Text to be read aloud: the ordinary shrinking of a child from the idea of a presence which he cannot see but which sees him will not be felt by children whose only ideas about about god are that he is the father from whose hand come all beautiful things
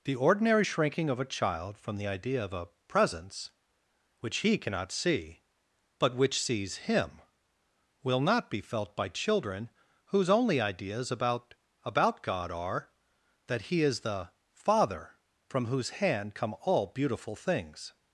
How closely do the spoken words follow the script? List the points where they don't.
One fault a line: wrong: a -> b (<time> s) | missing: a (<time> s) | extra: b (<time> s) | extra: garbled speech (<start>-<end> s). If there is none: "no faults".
no faults